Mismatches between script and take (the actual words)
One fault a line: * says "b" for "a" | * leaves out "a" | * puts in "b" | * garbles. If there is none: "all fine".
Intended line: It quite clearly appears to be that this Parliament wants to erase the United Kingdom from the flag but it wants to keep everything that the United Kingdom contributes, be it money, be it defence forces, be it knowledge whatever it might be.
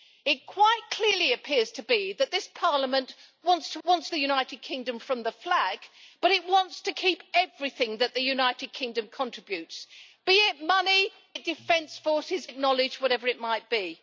* says "wants" for "erase"
* leaves out "be"
* leaves out "be"